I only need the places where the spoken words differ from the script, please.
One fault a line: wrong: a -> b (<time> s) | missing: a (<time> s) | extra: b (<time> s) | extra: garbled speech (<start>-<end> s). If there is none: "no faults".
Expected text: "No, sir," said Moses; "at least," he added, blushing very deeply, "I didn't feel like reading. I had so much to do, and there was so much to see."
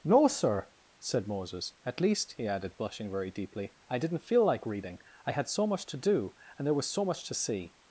no faults